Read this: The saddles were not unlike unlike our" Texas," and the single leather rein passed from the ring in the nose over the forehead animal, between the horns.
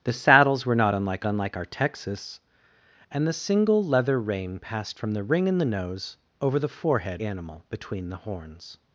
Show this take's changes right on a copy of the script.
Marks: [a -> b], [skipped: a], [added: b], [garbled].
The saddles were not unlike unlike our" Texas," and the single leather rein passed from the ring in the nose over the forehead animal, between the horns.